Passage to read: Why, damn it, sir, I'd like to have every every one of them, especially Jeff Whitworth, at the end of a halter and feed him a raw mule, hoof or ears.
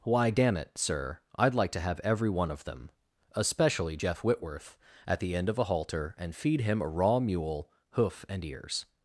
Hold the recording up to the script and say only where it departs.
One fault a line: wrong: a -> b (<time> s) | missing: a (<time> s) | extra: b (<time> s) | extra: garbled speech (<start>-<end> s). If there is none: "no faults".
missing: every (2.3 s)
wrong: or -> and (8.3 s)